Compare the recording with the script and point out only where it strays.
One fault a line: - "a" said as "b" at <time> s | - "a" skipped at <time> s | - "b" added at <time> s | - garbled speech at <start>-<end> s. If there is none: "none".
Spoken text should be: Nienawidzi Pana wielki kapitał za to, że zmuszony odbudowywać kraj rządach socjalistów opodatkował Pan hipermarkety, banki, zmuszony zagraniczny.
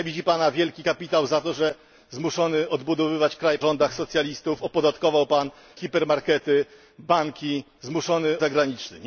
none